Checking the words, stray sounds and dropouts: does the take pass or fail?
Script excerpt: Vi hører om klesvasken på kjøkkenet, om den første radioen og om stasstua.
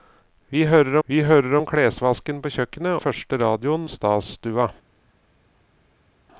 fail